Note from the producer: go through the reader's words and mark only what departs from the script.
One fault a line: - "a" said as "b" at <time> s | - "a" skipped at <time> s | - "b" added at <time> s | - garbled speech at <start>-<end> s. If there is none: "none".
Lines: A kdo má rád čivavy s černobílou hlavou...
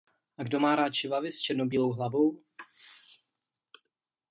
none